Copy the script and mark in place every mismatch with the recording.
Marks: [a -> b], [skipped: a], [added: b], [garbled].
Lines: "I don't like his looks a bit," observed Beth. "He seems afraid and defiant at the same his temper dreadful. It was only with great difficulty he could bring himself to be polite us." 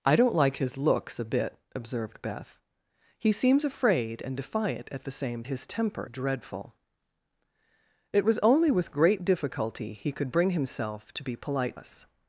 "I don't like his looks a bit," observed Beth. "He seems afraid and defiant at the same his temper dreadful. It was only with great difficulty he could bring himself to be polite us."